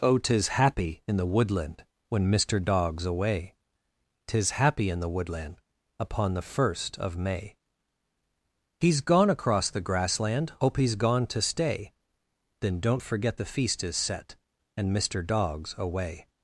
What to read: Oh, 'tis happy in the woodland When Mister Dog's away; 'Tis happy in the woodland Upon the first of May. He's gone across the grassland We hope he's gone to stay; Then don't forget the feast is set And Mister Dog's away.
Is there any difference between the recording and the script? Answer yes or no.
yes